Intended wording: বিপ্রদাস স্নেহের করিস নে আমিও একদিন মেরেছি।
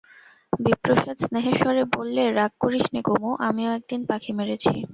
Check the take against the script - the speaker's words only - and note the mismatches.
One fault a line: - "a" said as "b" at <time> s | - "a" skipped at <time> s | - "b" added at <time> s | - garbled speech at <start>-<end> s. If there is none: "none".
- "স্বরে বললে রাগ" added at 1.6 s
- "কুমু" added at 3.0 s
- "পাখি" added at 4.1 s